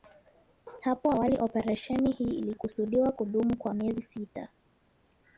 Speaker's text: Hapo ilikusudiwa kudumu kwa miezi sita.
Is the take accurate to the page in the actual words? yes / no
no